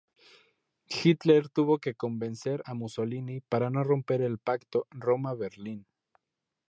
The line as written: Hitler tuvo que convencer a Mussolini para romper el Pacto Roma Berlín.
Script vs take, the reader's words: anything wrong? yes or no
yes